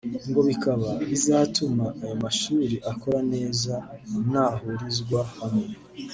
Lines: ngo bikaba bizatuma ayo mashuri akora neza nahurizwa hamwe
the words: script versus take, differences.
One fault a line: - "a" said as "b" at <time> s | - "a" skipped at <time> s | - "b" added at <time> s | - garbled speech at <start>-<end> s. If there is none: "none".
none